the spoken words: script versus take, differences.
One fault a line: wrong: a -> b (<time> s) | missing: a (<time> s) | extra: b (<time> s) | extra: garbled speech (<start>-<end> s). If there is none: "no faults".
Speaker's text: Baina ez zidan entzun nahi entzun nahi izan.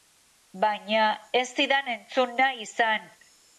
missing: entzun nahi (2.7 s)